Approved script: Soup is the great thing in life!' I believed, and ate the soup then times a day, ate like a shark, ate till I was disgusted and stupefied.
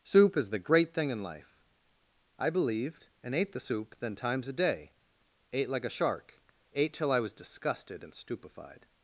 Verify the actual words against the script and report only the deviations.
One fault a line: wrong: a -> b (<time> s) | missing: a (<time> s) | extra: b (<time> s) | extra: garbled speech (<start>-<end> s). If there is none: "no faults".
no faults